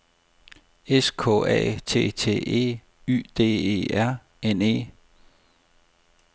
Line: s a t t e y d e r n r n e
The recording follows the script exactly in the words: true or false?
false